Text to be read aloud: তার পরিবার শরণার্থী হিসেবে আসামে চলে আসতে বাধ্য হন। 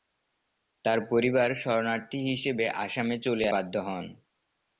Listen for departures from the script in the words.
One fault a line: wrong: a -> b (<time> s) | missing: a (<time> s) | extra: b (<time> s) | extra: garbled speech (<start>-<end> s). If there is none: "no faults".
missing: আসতে (3.5 s)